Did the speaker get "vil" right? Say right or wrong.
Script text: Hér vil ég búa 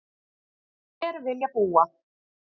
right